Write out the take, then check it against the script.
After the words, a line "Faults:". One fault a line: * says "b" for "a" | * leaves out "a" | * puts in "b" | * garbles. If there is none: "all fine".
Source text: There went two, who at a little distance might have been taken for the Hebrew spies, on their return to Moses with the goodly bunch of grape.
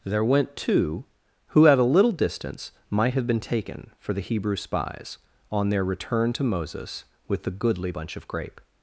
There went two, who at a little distance might have been taken for the Hebrew spies, on their return to Moses with the goodly bunch of grape.
Faults:
all fine